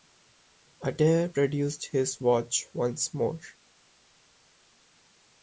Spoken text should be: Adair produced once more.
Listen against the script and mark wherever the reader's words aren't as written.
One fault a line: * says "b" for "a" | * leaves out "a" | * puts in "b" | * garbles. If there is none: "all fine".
* puts in "his watch"